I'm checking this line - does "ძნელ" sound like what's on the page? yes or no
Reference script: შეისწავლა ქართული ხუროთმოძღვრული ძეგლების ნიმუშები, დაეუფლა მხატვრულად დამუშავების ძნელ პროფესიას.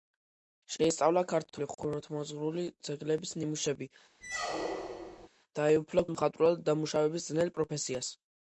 yes